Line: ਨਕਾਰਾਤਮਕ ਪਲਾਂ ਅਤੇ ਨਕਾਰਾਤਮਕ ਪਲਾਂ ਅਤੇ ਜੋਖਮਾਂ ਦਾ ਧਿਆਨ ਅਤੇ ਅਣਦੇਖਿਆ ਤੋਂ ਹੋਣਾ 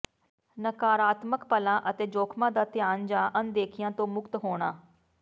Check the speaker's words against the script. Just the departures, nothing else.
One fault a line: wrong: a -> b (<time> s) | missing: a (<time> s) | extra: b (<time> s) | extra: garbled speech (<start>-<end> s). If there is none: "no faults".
missing: ਨਕਾਰਾਤਮਕ ਪਲਾਂ ਅਤੇ (2.1 s)
wrong: ਅਤੇ -> ਜਾਂ (3.1 s)
extra: ਮੁਕਤ (4.1 s)